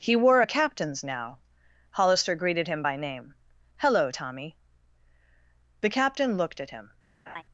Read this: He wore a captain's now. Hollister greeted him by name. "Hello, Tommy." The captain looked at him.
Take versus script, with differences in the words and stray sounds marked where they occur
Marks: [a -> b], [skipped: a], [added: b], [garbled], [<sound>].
He wore a captain's now. Hollister greeted him by name. "Hello, Tommy." The captain looked at him. [laugh]